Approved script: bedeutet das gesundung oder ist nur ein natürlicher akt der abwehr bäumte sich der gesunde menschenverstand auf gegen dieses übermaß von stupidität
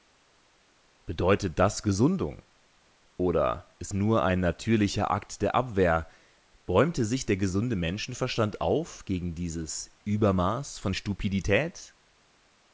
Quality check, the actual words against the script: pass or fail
pass